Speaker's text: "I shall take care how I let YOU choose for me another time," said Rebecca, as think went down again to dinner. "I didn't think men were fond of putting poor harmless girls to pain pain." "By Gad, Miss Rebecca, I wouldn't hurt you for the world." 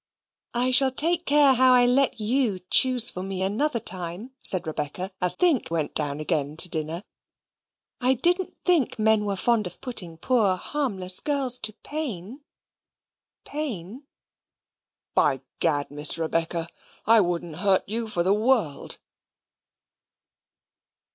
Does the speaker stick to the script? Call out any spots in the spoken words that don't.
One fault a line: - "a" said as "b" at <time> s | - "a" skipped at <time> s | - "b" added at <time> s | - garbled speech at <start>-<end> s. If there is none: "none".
none